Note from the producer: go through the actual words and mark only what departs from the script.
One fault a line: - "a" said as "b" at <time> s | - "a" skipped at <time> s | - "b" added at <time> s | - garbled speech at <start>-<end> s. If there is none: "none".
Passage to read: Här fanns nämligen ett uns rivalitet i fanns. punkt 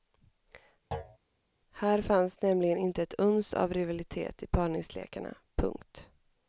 - "inte" added at 2.8 s
- "av" added at 3.5 s
- "fanns" said as "parningslekarna" at 4.5 s